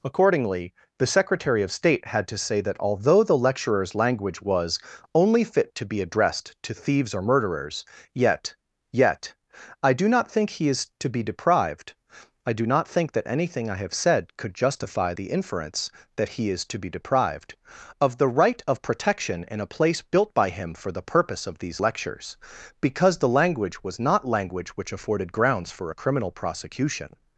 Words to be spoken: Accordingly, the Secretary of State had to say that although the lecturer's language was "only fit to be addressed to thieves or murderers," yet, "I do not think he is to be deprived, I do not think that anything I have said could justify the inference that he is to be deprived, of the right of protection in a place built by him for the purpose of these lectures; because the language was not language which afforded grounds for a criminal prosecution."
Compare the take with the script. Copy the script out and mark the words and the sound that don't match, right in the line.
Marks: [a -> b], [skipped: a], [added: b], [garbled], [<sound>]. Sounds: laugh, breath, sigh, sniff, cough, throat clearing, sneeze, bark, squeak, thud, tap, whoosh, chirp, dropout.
Accordingly, the Secretary of State had to say that although the lecturer's language was "only fit to be addressed to thieves or murderers," yet, [added: yet] "I do not think he is to be deprived, I do not think that anything I have said could justify the inference that he is to be deprived, of the right of protection in a place built by him for the purpose of these lectures; because the language was not language which afforded grounds for a criminal prosecution."